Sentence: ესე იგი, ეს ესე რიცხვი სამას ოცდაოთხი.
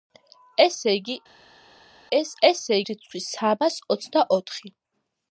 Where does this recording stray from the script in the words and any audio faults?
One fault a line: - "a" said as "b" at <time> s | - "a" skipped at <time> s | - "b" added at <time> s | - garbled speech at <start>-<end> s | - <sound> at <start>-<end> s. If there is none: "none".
none